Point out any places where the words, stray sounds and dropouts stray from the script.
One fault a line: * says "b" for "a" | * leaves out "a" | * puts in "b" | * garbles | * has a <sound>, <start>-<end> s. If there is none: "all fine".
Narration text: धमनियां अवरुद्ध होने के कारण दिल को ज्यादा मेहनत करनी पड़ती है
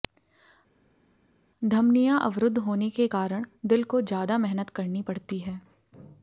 all fine